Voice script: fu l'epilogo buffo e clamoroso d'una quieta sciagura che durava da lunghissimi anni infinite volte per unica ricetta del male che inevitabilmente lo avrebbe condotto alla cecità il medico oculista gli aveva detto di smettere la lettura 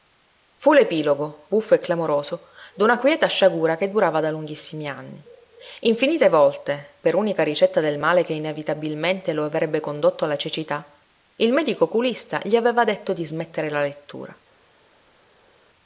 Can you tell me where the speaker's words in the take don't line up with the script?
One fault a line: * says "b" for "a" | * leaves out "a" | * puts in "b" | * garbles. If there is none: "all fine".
all fine